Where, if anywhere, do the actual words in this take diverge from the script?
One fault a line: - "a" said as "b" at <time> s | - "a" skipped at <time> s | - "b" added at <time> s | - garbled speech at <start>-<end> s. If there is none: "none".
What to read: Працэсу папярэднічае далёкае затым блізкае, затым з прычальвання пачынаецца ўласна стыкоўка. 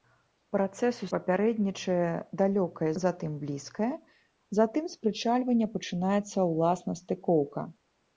none